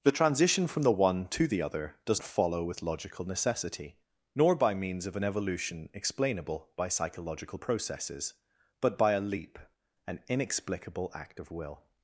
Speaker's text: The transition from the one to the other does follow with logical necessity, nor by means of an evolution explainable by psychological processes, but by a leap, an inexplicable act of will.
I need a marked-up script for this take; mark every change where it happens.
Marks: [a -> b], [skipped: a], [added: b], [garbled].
The transition from the one to the other does follow with logical necessity, nor by means of an evolution explainable by psychological processes, but by a leap, an inexplicable act of will.